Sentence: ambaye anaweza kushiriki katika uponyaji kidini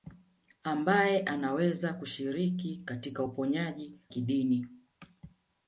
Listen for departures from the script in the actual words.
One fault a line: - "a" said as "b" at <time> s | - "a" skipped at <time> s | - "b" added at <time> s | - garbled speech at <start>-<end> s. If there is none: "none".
none